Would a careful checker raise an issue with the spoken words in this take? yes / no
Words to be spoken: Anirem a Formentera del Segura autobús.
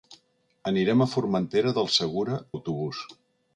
no